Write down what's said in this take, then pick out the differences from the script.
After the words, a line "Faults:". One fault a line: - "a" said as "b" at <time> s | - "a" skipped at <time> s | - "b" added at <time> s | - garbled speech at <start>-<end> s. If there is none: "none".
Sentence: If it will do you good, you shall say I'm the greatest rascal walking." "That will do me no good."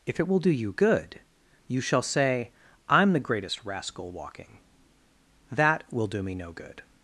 If it will do you good, you shall say I'm the greatest rascal walking." "That will do me no good."
Faults:
none